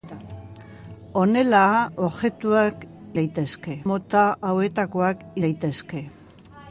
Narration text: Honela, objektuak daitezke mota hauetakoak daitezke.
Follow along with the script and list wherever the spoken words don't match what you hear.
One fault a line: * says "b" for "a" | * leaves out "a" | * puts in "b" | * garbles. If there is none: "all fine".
all fine